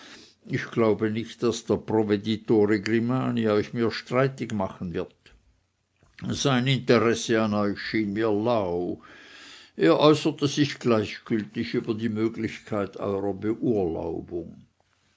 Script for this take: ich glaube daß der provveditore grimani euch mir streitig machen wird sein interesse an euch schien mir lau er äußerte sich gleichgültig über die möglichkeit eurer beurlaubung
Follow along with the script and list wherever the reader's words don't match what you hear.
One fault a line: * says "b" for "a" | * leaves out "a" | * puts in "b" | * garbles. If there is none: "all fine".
* puts in "nicht"